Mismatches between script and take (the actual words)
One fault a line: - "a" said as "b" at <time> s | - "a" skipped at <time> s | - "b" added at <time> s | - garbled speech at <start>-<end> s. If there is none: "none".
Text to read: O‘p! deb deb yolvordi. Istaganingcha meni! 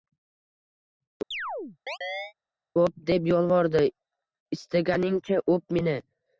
- "deb" skipped at 3.3 s
- "o‘p" added at 5.6 s